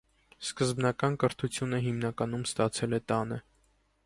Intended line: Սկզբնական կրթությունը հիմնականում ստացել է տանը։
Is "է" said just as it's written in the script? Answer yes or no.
yes